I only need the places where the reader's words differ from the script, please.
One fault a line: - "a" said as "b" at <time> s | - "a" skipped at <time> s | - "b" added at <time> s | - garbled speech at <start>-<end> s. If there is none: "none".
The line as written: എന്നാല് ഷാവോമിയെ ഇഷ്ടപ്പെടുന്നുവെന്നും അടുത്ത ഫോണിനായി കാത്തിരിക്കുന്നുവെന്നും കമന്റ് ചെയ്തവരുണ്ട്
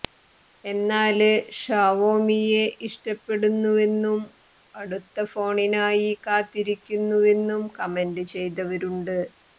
none